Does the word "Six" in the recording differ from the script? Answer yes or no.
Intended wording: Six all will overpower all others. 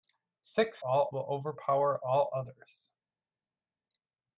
no